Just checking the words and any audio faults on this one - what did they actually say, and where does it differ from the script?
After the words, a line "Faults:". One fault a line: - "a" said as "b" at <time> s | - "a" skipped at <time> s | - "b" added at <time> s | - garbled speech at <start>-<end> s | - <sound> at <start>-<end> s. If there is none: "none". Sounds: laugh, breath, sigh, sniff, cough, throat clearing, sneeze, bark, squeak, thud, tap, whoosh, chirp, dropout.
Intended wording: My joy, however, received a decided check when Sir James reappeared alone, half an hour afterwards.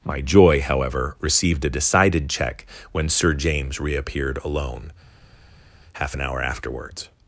My joy, however, received a decided check when Sir James reappeared alone, half an hour afterwards.
Faults:
none